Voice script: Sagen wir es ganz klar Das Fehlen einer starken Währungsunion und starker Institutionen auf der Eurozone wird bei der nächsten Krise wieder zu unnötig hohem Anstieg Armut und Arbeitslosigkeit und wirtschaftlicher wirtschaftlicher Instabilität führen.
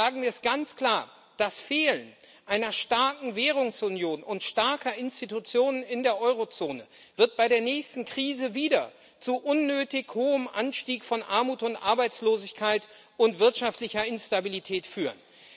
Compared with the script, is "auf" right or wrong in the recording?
wrong